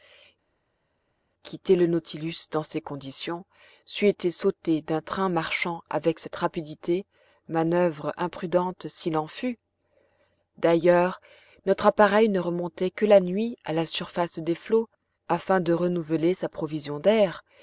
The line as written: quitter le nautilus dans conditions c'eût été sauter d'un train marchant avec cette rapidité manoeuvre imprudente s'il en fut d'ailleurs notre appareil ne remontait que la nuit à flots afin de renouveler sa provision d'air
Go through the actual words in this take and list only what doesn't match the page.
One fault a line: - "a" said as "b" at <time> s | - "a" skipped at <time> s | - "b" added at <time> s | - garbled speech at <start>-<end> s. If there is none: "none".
- "ces" added at 2.6 s
- "la surface des" added at 13.7 s